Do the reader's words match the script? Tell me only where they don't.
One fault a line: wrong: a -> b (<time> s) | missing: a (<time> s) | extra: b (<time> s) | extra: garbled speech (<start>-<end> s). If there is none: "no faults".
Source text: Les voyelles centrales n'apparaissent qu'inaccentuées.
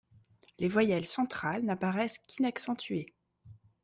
no faults